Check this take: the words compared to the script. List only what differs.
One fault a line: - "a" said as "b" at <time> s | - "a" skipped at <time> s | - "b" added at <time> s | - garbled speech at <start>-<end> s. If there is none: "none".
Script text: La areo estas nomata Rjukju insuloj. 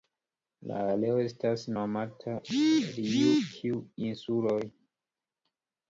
none